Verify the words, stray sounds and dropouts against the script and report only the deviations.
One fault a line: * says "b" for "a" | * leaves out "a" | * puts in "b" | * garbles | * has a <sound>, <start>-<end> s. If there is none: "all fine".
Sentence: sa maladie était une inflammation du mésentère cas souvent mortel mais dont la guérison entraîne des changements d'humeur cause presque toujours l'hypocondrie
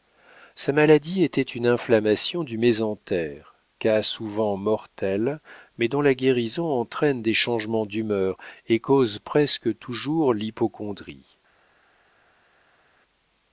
* puts in "et"